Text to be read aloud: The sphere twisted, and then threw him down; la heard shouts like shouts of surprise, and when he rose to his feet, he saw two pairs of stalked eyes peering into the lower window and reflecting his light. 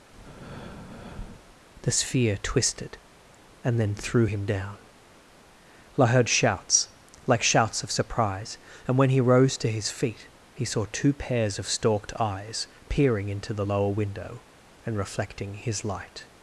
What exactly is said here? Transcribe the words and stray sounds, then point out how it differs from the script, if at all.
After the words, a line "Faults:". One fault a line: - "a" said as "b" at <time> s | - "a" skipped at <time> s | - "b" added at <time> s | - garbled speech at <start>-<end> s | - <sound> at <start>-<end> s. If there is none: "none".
The sphere twisted, and then threw him down; la heard shouts like shouts of surprise, and when he rose to his feet, he saw two pairs of stalked eyes peering into the lower window and reflecting his light.
Faults:
- breath at 0.1-1.6 s